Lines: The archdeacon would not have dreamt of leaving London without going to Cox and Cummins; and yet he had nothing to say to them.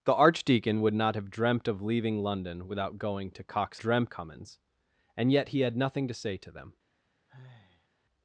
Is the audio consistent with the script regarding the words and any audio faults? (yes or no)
no